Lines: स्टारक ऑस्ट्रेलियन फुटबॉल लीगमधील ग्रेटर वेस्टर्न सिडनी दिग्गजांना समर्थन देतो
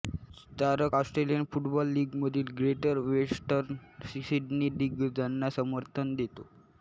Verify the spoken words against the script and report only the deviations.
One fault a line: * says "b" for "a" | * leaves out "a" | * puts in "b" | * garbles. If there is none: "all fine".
all fine